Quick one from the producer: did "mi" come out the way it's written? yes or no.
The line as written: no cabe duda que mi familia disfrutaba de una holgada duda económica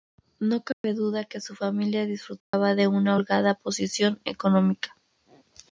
no